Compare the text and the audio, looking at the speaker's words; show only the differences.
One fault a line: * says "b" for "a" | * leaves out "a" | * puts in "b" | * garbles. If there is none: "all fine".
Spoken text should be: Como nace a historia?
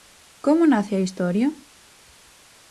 all fine